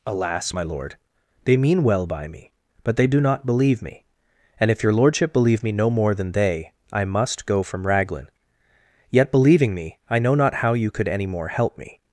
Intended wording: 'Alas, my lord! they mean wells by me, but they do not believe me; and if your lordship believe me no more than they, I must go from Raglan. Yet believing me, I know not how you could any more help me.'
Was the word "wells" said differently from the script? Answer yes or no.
yes